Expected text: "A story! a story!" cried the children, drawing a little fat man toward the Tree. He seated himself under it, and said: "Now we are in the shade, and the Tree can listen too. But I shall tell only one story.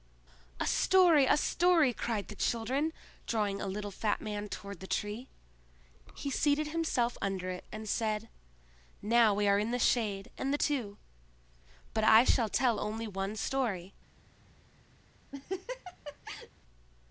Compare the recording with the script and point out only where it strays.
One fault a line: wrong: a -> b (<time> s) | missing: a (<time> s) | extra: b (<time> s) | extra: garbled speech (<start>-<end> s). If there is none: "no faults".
missing: Tree can listen (10.6 s)